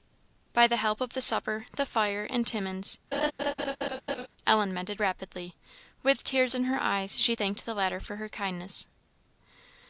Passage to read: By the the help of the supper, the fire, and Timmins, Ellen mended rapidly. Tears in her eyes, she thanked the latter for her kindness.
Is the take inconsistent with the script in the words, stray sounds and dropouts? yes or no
yes